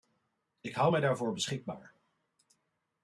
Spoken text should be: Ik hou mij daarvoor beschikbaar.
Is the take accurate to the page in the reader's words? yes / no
yes